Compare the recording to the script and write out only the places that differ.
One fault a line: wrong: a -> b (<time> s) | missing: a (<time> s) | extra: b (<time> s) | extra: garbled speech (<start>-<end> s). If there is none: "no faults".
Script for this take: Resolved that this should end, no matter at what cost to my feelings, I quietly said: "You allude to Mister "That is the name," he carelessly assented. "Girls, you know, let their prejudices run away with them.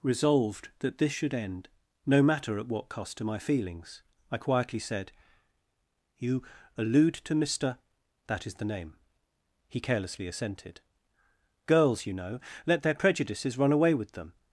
no faults